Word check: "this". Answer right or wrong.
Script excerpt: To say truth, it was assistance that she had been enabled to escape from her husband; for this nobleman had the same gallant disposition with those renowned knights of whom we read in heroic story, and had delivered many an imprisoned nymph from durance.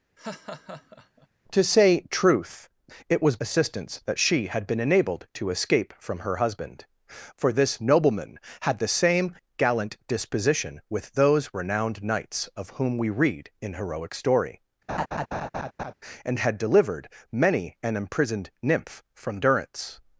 right